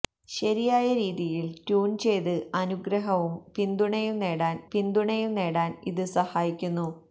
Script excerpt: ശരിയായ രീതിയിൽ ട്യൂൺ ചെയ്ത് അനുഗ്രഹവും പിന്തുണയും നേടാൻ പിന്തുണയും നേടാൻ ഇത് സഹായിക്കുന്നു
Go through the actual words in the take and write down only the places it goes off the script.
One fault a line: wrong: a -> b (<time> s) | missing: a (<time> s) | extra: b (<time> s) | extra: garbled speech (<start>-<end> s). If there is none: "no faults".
no faults